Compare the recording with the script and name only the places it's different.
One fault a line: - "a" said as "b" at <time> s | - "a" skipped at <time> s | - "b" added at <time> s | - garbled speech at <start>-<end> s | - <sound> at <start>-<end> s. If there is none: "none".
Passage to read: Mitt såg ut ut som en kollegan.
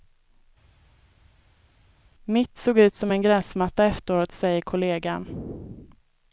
- "ut" skipped at 2.9 s
- "gräsmatta efteråt säger" added at 3.2 s